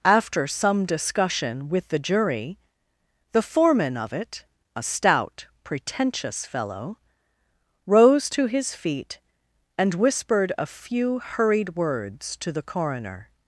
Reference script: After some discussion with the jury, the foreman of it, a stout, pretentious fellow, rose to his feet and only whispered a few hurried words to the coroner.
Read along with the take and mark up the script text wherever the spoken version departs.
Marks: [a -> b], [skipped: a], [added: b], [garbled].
After some discussion with the jury, the foreman of it, a stout, pretentious fellow, rose to his feet and [skipped: only] whispered a few hurried words to the coroner.